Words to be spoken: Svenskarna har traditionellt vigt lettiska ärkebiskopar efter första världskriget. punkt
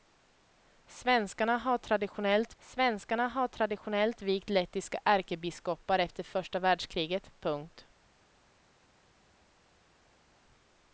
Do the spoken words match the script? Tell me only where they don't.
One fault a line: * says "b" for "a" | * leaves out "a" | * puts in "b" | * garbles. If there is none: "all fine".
* puts in "svenskarna har traditionellt"